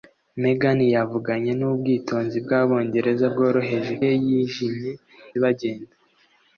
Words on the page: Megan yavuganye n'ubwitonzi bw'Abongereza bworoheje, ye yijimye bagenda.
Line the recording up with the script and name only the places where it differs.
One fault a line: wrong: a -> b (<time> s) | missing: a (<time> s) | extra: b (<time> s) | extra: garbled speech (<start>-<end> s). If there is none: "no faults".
no faults